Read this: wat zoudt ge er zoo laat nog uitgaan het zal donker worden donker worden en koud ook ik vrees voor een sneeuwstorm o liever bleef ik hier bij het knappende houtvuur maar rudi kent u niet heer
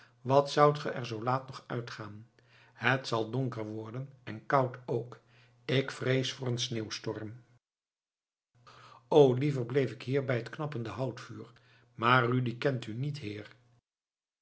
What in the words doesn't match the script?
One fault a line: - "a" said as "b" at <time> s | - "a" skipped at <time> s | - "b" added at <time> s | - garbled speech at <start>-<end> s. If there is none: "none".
- "donker worden" skipped at 4.1 s